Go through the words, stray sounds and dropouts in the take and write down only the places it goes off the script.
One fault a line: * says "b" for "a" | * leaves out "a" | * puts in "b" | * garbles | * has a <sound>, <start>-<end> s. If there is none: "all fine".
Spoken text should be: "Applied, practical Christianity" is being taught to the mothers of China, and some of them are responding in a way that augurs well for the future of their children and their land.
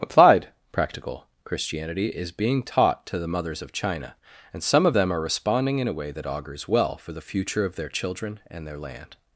all fine